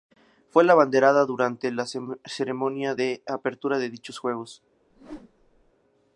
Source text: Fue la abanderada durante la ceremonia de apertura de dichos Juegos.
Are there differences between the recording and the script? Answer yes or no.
no